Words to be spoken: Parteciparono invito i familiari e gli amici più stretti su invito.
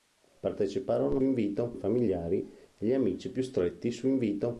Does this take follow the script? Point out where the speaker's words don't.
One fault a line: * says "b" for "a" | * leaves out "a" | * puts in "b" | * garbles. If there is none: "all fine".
all fine